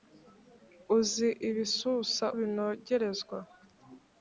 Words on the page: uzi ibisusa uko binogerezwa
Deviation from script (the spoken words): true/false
true